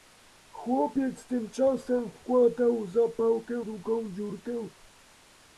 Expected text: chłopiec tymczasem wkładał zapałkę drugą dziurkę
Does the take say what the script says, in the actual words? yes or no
yes